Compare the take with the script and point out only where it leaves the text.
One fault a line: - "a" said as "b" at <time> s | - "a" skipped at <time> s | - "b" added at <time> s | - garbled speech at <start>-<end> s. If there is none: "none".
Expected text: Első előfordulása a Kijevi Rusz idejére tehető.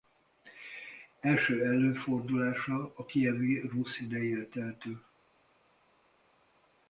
none